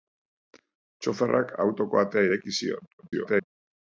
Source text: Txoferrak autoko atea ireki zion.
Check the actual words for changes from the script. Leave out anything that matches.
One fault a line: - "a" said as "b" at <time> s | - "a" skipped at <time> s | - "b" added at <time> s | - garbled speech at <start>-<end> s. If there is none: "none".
- garbled speech at 3.0-3.5 s